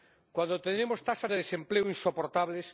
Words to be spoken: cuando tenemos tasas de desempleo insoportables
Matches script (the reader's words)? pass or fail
pass